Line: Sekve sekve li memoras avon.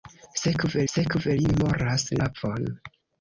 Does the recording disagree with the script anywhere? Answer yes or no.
no